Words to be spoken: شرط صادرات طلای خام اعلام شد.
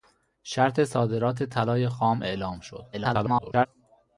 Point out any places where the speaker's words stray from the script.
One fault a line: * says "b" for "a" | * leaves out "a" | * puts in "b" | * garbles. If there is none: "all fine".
* garbles